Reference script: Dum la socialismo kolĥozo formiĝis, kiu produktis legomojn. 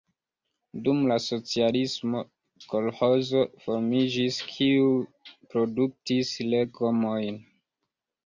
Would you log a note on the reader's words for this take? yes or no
no